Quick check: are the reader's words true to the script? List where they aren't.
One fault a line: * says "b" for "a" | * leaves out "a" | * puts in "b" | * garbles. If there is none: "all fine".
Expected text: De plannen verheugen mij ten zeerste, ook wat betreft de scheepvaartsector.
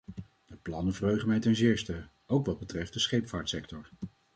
all fine